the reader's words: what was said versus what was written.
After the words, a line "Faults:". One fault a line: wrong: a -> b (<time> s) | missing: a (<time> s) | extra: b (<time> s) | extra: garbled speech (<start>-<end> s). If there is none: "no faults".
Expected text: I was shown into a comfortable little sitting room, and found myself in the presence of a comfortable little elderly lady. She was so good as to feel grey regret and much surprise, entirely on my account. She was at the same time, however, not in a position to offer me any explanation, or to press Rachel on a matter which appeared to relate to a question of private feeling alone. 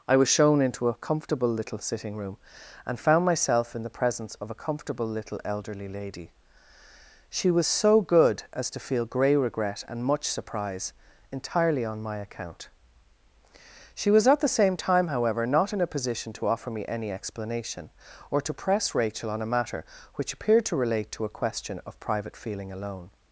I was shown into a comfortable little sitting room, and found myself in the presence of a comfortable little elderly lady. She was so good as to feel grey regret and much surprise, entirely on my account. She was at the same time, however, not in a position to offer me any explanation, or to press Rachel on a matter which appeared to relate to a question of private feeling alone.
Faults:
no faults